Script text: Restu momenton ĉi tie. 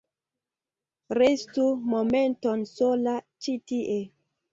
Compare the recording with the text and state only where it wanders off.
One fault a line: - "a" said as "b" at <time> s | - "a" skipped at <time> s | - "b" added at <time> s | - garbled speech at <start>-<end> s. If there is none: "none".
- "sola" added at 2.7 s